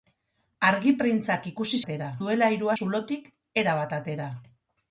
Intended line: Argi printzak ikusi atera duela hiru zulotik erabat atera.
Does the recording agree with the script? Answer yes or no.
yes